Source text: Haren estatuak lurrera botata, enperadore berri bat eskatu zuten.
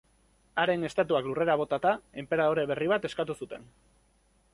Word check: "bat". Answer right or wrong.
right